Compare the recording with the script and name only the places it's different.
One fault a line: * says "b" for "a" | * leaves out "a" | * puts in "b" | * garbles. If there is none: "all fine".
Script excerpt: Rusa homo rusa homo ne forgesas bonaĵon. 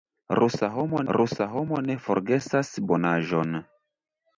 all fine